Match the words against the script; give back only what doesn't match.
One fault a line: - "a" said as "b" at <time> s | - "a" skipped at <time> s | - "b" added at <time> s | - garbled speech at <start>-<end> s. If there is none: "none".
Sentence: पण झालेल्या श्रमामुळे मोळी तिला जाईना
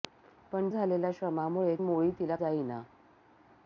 none